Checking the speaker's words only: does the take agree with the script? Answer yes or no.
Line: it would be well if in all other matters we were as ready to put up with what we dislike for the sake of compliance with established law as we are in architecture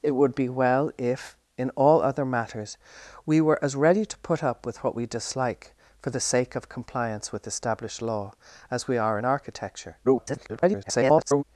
no